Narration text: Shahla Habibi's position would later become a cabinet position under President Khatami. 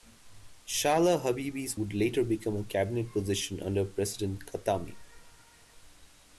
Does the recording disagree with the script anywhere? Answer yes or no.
yes